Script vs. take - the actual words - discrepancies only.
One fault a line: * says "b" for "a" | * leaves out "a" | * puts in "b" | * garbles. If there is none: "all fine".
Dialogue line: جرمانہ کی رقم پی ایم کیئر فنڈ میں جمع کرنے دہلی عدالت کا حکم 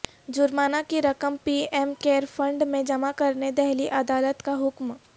all fine